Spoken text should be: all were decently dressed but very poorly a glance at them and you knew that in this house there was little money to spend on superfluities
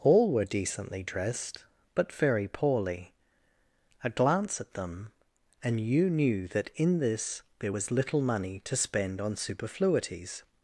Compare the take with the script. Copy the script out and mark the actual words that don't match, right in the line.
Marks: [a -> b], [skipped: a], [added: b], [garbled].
all were decently dressed but very poorly a glance at them and you knew that in this [skipped: house] there was little money to spend on superfluities